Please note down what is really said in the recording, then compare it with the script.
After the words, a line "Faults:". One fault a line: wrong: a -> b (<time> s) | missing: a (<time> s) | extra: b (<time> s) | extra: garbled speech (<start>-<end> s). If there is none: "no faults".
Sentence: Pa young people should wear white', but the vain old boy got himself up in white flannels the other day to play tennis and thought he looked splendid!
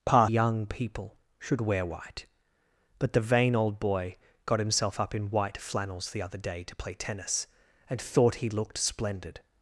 Pa young people should wear white', but the vain old boy got himself up in white flannels the other day to play tennis and thought he looked splendid!
Faults:
no faults